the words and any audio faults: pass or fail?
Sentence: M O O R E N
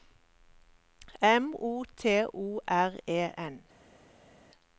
fail